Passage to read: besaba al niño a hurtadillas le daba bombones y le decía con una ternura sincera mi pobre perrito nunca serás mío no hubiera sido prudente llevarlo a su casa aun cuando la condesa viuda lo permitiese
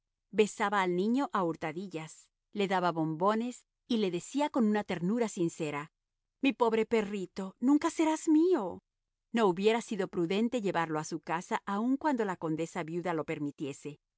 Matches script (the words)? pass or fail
pass